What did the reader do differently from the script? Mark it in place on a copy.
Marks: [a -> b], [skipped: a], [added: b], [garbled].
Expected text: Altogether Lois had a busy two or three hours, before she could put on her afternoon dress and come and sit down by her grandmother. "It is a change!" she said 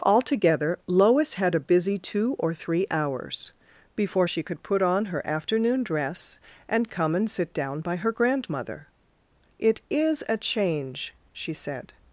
Altogether Lois had a busy two or three hours, before she could put on her afternoon dress and come and sit down by her grandmother. "It is a change!" she said